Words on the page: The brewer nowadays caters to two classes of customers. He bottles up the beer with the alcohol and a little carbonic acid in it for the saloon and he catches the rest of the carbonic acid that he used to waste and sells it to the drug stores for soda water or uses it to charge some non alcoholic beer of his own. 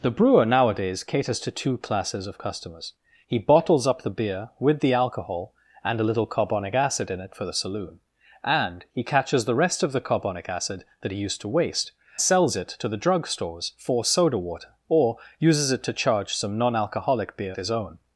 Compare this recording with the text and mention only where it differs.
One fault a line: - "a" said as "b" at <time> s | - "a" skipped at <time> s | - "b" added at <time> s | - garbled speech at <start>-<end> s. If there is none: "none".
- "and" skipped at 11.9 s
- "of" skipped at 17.6 s